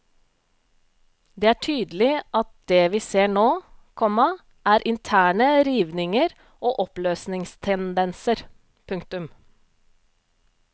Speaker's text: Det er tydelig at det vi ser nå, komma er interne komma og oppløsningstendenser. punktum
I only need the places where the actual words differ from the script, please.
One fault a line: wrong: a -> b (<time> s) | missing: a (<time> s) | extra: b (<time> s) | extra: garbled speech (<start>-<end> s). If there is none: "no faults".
wrong: komma -> rivninger (5.7 s)